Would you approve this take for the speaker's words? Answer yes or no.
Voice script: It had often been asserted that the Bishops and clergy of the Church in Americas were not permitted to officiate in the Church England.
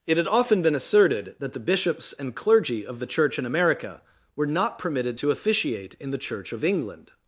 no